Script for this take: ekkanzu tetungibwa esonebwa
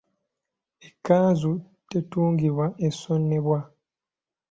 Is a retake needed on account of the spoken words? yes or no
no